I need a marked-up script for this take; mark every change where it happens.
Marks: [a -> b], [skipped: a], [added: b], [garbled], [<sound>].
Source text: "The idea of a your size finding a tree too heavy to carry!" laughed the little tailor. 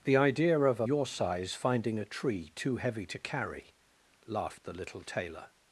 "The idea of a your size finding a tree too heavy to carry!" laughed the little tailor.